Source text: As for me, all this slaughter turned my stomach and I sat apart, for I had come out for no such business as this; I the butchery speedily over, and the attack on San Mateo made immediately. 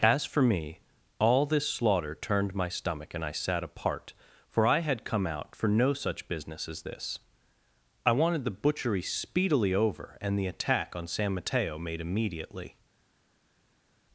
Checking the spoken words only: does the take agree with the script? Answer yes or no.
no